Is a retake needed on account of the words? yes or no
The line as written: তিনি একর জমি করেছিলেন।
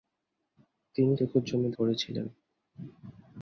no